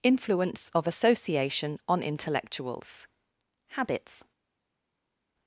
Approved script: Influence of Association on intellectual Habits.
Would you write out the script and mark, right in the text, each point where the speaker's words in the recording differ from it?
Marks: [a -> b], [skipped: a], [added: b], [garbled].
Influence of Association on [intellectual -> intellectuals] Habits.